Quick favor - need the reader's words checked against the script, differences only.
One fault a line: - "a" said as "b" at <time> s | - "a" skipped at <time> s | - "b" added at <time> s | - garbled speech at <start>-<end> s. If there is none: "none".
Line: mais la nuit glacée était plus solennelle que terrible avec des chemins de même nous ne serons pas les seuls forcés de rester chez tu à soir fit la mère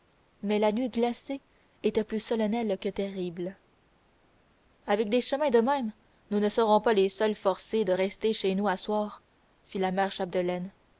- "tu" said as "nous" at 8.5 s